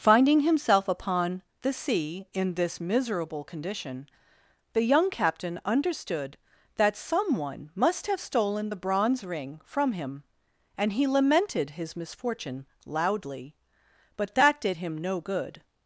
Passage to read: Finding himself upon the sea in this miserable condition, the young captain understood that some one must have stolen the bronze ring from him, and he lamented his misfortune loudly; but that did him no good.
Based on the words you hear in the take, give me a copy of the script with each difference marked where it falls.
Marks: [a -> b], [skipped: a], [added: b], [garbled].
Finding himself upon the sea in this miserable condition, the young captain understood that some one must have stolen the bronze ring from him, and he lamented his misfortune loudly; but that did him no good.